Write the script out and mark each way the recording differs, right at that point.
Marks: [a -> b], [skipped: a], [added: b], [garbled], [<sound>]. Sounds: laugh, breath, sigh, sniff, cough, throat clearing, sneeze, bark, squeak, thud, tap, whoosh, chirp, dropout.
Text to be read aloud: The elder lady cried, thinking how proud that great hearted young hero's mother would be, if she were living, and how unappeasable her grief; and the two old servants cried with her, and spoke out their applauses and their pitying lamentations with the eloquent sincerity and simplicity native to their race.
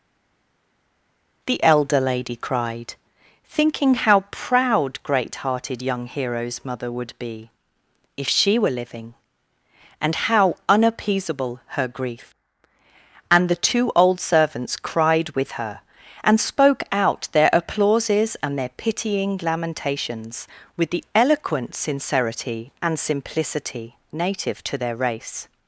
The elder lady cried, thinking how proud [skipped: that] great hearted young hero's mother would be, if she were living, and how unappeasable her grief; and the two old servants cried with her, and spoke out their applauses and their pitying lamentations with the eloquent sincerity and simplicity native to their race.